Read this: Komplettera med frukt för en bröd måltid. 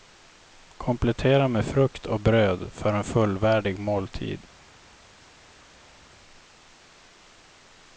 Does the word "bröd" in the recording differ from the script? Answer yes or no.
yes